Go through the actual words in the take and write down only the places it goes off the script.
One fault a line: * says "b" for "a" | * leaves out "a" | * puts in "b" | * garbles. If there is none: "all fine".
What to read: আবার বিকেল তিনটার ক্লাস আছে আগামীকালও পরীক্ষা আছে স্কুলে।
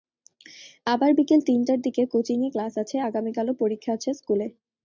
* puts in "দিকে কোচিংয়ে"